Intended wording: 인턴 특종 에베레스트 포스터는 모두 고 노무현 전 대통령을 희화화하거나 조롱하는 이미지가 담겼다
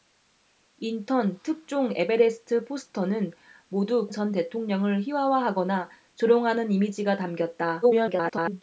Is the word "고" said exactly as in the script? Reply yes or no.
no